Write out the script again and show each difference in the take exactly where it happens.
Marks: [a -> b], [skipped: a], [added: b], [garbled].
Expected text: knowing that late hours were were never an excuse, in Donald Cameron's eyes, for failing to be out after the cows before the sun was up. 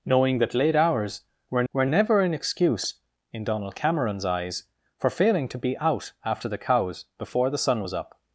knowing that late hours were were never an excuse, in Donald Cameron's eyes, for failing to be out after the cows before the sun was up.